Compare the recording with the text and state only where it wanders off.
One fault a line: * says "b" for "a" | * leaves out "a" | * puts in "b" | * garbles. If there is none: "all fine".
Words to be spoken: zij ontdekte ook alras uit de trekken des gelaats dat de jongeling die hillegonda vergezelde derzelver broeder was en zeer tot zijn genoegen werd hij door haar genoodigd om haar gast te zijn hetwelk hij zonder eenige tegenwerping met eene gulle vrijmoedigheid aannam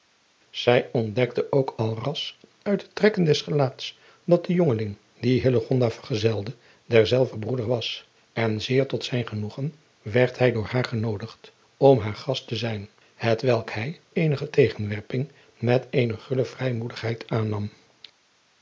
* leaves out "zonder"